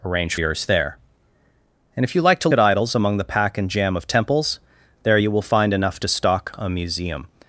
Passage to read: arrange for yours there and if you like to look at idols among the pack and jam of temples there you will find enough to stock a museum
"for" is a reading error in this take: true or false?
true